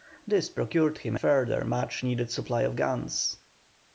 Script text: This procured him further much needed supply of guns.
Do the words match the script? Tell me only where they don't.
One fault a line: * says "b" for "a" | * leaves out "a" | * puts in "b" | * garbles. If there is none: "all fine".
all fine